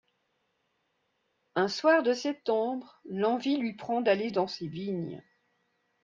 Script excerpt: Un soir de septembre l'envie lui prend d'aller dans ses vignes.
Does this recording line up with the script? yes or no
yes